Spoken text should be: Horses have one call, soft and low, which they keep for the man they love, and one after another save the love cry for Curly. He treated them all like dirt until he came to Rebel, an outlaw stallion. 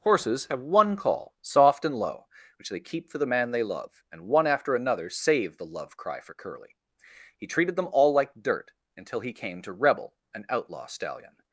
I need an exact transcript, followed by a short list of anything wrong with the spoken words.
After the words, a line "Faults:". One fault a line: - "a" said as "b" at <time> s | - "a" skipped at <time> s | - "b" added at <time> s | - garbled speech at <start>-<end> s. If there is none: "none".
Horses have one call, soft and low, which they keep for the man they love, and one after another save the love cry for Curly. He treated them all like dirt until he came to Rebel, an outlaw stallion.
Faults:
none